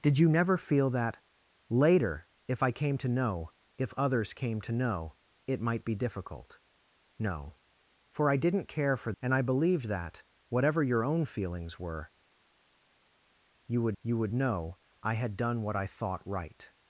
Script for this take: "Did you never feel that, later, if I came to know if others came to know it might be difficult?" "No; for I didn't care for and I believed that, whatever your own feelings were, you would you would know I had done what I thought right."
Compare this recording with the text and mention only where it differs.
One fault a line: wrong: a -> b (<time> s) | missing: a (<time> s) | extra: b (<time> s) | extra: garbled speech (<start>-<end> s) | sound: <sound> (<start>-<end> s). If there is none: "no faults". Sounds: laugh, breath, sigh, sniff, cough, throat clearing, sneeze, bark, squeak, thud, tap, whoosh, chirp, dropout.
no faults